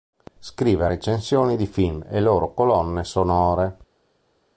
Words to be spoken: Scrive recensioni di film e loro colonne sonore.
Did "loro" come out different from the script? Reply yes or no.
no